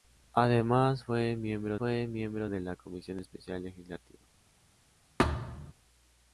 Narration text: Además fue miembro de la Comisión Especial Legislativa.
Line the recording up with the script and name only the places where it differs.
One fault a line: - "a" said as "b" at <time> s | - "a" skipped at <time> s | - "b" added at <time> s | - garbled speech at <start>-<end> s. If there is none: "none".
- "fue miembro" added at 1.8 s